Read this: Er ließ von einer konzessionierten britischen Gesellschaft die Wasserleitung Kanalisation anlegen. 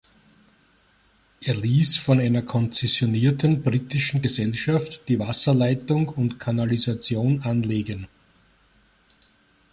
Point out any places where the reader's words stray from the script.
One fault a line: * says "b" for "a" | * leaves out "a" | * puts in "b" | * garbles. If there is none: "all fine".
* puts in "und"